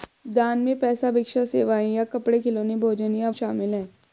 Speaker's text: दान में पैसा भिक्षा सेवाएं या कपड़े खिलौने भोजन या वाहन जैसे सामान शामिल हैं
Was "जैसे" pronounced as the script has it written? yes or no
no